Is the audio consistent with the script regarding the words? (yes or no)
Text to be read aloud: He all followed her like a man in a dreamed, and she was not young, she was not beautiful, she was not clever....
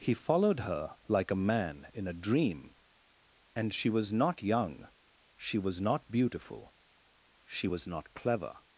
no